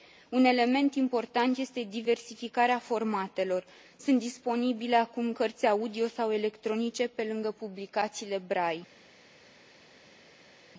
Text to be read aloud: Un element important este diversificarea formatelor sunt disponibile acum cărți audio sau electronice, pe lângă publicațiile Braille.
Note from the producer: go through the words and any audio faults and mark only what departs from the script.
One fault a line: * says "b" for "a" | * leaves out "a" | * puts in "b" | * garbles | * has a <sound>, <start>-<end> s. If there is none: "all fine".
all fine